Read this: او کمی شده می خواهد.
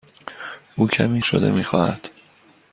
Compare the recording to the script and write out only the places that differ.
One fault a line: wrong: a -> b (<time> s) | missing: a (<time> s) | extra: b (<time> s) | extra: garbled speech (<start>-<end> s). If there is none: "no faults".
no faults